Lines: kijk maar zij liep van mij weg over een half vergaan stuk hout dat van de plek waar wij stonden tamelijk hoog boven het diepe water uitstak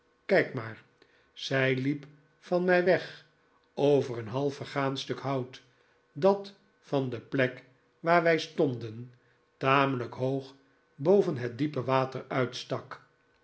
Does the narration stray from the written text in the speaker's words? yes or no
no